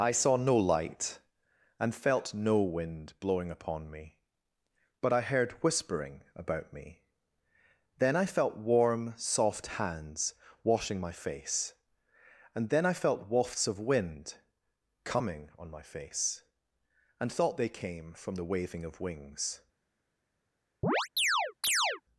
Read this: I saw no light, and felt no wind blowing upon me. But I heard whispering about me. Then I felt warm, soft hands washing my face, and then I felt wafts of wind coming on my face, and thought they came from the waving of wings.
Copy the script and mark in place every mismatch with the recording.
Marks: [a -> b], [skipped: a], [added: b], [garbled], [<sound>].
I saw no light, and felt no wind blowing upon me. But I heard whispering about me. Then I felt warm, soft hands washing my face, and then I felt wafts of wind coming on my face, and thought they came from the waving of wings. [chirp]